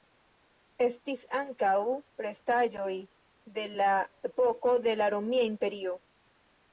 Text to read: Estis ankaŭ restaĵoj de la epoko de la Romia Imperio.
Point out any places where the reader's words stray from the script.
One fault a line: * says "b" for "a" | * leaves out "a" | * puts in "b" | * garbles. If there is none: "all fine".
all fine